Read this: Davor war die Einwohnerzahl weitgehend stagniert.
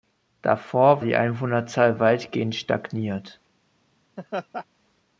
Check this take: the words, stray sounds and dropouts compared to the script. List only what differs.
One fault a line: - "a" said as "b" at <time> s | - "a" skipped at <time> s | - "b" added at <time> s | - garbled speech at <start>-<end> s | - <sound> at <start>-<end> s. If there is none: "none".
- "war" skipped at 1.0 s
- laugh at 4.2-4.7 s